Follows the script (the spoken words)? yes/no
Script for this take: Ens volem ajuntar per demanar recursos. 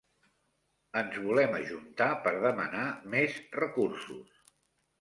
no